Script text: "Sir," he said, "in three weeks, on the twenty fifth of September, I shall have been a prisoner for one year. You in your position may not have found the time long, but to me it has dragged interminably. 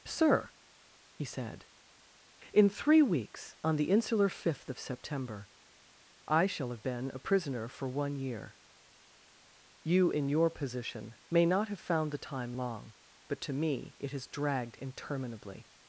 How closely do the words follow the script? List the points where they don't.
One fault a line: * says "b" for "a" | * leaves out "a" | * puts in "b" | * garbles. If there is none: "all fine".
* says "insular" for "twenty"